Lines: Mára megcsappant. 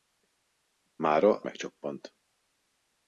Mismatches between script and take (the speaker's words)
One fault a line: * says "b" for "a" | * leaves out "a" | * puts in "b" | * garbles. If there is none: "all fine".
all fine